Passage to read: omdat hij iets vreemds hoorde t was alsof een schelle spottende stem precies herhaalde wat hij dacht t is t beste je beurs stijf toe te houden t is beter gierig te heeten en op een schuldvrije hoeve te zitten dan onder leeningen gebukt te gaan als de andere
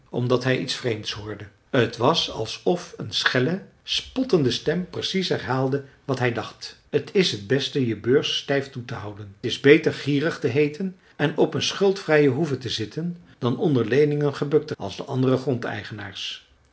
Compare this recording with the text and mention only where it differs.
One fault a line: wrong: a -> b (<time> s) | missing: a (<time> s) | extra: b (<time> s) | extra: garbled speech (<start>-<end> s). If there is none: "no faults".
missing: t (9.3 s)
missing: gaan (14.8 s)